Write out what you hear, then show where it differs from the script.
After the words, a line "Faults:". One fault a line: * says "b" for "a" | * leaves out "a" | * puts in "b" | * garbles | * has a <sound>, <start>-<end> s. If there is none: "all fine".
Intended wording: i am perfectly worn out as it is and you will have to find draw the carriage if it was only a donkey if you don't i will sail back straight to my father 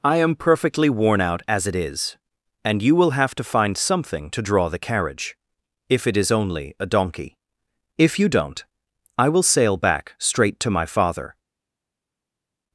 i am perfectly worn out as it is and you will have to find something to draw the carriage if it is only a donkey if you don't i will sail back straight to my father
Faults:
* puts in "something to"
* says "is" for "was"